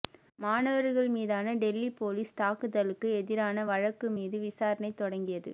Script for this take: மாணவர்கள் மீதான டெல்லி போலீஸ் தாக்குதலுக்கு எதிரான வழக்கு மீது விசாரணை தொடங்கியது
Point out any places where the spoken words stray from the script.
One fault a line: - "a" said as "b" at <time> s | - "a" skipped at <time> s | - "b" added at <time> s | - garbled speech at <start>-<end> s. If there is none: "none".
none